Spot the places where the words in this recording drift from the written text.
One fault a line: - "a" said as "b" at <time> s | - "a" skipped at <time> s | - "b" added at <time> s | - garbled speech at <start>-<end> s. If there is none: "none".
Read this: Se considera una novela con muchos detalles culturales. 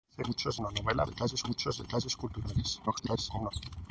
- "considera" said as "muchos" at 0.2 s
- "con" said as "detalles" at 1.1 s
- garbled speech at 2.9-3.5 s